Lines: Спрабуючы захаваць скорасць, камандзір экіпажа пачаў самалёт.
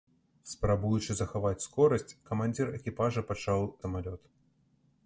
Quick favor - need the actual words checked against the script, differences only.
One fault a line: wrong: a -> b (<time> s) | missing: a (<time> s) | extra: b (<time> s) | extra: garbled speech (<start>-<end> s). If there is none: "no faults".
no faults